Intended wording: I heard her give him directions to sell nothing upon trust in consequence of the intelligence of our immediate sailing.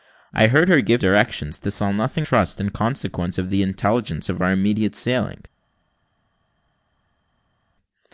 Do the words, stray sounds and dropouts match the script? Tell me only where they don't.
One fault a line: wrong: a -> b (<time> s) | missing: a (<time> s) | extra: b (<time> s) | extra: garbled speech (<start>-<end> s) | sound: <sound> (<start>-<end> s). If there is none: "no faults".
missing: him (1.0 s)
missing: upon (2.3 s)